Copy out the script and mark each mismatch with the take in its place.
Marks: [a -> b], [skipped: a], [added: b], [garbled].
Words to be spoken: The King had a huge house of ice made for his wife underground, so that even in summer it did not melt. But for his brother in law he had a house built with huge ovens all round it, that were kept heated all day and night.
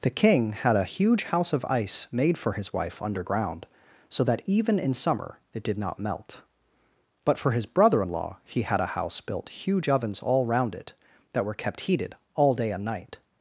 The King had a huge house of ice made for his wife underground, so that even in summer it did not melt. But for his brother in law he had a house built [skipped: with] huge ovens all round it, that were kept heated all day and night.